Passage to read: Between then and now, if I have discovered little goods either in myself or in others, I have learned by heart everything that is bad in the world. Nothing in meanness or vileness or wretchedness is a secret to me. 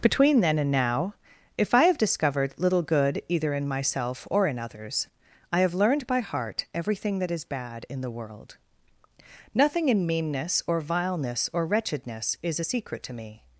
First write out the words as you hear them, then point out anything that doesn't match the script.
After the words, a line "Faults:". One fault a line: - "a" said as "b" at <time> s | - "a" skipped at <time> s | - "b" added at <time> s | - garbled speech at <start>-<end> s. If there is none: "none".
Between then and now, if I have discovered little good either in myself or in others, I have learned by heart everything that is bad in the world. Nothing in meanness or vileness or wretchedness is a secret to me.
Faults:
- "goods" said as "good" at 2.8 s